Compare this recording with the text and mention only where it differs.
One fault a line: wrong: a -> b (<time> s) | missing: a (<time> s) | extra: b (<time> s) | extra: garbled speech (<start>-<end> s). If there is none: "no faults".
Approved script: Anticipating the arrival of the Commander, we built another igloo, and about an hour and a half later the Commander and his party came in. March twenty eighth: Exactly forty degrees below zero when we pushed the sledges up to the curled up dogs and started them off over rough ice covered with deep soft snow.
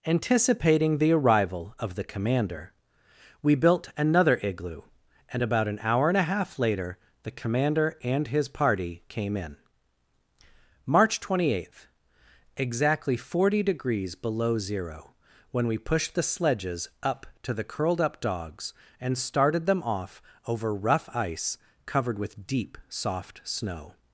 no faults